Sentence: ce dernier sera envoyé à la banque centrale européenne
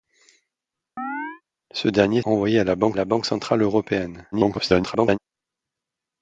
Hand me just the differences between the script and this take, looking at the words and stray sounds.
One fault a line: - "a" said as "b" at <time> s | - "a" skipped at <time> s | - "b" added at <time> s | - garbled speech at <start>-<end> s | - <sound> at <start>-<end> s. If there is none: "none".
- chirp at 1.0-1.4 s
- "sera" skipped at 2.2 s
- "la banque" added at 2.9 s
- garbled speech at 4.3-5.2 s